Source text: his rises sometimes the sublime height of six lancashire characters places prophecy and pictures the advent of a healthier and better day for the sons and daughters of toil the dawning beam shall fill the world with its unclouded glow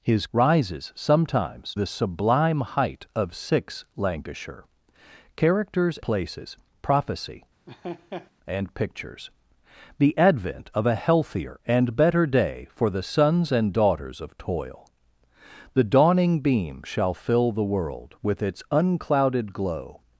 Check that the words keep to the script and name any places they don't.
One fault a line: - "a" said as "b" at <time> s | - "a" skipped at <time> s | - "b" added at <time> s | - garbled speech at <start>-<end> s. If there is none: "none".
none